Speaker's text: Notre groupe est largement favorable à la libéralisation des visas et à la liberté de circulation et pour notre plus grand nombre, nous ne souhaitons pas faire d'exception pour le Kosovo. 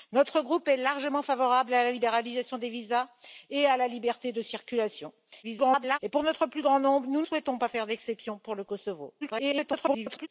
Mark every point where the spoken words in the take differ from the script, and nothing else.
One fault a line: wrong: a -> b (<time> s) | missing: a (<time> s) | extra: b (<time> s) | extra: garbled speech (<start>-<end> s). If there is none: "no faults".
extra: garbled speech (5.4-6.0 s)
missing: ne (7.2 s)
extra: garbled speech (9.2-10.3 s)